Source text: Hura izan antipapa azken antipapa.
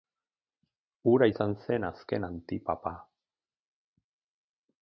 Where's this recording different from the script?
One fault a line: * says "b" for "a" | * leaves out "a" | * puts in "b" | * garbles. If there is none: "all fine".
* says "zen" for "antipapa"